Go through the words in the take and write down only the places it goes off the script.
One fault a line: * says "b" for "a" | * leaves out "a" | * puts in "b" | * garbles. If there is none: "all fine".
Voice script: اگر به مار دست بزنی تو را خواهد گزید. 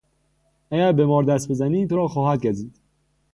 all fine